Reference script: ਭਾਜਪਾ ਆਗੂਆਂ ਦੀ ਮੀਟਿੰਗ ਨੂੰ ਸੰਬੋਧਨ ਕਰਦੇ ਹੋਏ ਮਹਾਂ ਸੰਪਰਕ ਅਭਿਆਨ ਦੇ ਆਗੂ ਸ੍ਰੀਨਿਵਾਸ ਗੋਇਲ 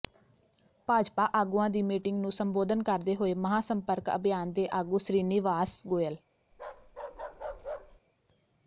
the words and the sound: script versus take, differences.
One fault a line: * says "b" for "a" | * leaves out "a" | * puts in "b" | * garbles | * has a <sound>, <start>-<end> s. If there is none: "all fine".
* has a bark, 6.5-8.0 s